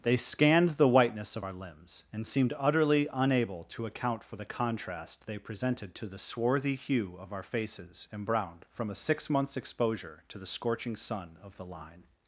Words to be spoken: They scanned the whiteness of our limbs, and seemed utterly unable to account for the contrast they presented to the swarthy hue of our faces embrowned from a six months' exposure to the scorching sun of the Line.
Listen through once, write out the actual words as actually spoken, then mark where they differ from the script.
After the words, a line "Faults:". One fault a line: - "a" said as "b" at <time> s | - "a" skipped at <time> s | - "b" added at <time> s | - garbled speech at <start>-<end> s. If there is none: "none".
They scanned the whiteness of our limbs, and seemed utterly unable to account for the contrast they presented to the swarthy hue of our faces embrowned from a six months' exposure to the scorching sun of the Line.
Faults:
none